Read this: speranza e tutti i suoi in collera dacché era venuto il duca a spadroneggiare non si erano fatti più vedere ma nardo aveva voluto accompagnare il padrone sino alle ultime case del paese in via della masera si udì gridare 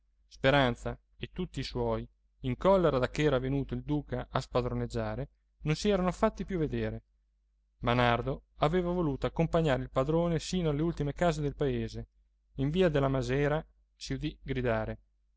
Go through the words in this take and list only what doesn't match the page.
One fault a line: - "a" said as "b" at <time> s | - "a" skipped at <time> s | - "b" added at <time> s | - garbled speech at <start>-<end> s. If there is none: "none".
none